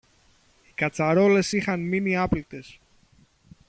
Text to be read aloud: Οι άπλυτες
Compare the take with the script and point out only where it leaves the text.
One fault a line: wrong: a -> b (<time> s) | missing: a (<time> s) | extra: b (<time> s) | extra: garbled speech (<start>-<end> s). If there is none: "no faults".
extra: κατσαρόλες είχαν μείνει (0.8 s)